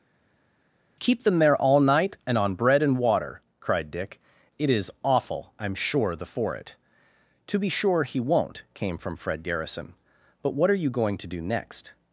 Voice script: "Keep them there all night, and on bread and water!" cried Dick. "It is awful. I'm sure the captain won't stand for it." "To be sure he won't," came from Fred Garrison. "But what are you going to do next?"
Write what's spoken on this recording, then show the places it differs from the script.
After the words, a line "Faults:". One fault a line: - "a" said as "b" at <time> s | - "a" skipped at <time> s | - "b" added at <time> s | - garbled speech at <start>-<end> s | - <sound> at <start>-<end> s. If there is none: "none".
"Keep them there all night, and on bread and water!" cried Dick. "It is awful. I'm sure the for it." "To be sure he won't," came from Fred Garrison. "But what are you going to do next?"
Faults:
- "captain won't stand" skipped at 6.2 s